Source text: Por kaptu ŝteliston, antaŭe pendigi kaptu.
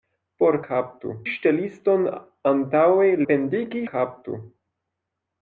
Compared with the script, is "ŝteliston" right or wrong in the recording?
right